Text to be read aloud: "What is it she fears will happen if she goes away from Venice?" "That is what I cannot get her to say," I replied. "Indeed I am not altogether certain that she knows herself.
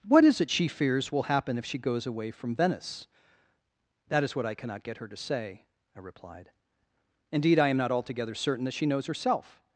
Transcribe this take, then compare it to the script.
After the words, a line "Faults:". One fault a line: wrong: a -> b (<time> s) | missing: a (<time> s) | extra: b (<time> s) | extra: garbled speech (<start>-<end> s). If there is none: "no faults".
"What is it she fears will happen if she goes away from Venice?" "That is what I cannot get her to say," I replied. "Indeed I am not altogether certain that she knows herself.
Faults:
no faults